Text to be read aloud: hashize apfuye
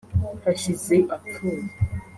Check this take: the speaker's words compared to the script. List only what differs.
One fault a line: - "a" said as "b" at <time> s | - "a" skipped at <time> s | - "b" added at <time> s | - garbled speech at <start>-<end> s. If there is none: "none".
none